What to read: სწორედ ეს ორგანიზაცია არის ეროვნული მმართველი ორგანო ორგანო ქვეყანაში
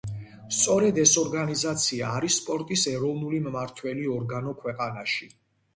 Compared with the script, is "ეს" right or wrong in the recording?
right